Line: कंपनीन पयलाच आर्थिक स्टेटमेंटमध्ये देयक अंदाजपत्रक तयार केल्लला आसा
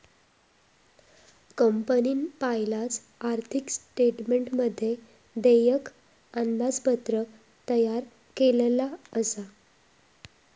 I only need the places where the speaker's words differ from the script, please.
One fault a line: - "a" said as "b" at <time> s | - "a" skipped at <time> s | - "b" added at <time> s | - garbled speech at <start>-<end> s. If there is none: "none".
none